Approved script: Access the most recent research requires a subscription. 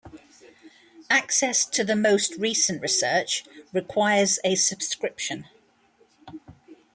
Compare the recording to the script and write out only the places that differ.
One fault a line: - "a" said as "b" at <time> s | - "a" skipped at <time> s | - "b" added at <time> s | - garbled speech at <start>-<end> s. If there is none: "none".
- "to" added at 1.6 s